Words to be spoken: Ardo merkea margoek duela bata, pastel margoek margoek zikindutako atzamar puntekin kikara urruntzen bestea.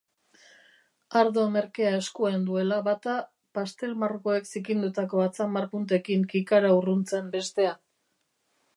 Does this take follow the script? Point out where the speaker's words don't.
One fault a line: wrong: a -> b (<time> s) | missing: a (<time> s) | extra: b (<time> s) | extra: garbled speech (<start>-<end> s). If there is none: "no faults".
wrong: margoek -> eskuan (2.0 s)
missing: margoek (4.5 s)